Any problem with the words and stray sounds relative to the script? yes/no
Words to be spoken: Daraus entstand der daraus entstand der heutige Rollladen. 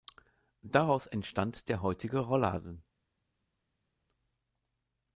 yes